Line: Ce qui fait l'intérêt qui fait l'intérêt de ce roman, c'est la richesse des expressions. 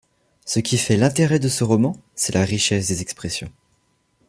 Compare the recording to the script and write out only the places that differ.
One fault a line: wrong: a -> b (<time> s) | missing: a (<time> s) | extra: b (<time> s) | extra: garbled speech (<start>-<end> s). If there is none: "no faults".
missing: qui fait l'intérêt (1.4 s)